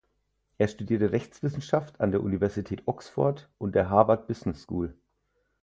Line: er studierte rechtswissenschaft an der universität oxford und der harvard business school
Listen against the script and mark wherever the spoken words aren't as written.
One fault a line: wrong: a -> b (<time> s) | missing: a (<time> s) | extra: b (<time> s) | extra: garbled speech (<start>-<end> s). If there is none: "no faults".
no faults